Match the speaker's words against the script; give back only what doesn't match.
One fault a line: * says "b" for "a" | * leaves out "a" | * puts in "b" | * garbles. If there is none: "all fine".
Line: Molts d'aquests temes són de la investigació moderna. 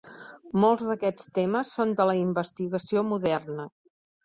all fine